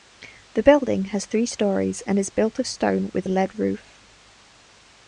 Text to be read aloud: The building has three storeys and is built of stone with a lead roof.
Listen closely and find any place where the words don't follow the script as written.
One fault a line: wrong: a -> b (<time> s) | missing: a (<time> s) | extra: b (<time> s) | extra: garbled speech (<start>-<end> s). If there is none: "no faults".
no faults